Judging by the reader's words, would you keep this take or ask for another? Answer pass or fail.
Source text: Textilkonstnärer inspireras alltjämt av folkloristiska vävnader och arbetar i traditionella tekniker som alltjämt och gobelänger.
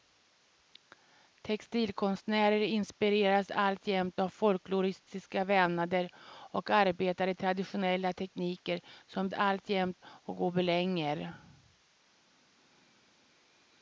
pass